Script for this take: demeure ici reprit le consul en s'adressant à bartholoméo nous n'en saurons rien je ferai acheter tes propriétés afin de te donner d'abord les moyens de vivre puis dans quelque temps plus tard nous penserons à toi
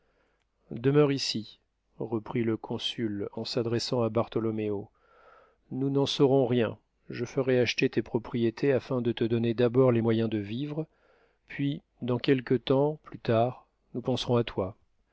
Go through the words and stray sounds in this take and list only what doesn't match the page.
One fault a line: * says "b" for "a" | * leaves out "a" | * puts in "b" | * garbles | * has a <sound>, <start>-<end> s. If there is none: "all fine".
all fine